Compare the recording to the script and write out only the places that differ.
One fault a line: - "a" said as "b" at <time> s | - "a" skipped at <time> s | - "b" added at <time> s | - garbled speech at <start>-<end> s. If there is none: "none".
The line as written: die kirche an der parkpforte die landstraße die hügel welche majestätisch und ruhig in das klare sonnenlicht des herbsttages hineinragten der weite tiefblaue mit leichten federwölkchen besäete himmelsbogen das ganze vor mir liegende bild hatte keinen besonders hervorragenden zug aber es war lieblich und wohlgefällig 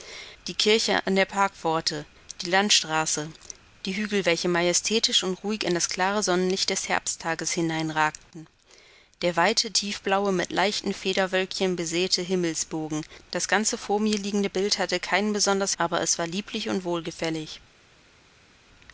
- "hervorragenden zug" skipped at 15.8 s